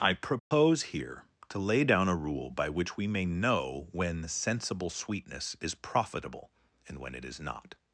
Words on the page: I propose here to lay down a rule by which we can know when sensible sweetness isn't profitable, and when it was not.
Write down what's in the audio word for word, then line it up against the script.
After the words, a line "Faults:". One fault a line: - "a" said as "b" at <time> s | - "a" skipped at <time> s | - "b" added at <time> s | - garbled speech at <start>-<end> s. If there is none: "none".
I propose here to lay down a rule by which we may know when sensible sweetness is profitable, and when it is not.
Faults:
- "can" said as "may" at 3.0 s
- "isn't" said as "is" at 5.6 s
- "was" said as "is" at 7.3 s